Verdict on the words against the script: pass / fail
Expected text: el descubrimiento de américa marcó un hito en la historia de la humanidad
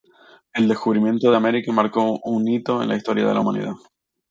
pass